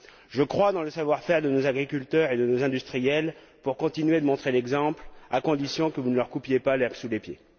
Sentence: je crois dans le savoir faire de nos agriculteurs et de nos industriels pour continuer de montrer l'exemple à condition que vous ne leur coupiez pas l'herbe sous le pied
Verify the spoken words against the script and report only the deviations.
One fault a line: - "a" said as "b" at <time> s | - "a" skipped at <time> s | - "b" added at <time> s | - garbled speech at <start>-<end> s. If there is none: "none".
none